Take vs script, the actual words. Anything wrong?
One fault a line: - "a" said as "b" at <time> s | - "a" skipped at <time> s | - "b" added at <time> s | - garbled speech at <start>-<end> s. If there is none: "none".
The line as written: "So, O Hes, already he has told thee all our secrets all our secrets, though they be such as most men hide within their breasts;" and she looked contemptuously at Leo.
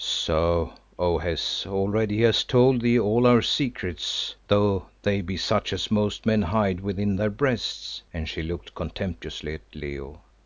- "all our secrets" skipped at 4.3 s